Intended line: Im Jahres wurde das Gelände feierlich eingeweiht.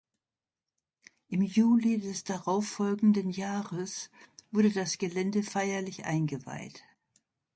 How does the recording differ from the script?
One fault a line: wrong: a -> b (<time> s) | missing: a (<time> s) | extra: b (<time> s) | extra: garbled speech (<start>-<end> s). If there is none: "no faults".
extra: Juli des darauffolgenden (1.4 s)